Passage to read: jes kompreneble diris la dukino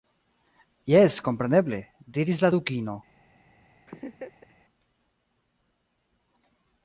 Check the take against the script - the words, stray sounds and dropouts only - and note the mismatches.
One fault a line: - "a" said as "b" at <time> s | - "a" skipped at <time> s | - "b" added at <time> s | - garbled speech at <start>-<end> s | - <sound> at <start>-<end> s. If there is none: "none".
- laugh at 3.9-4.5 s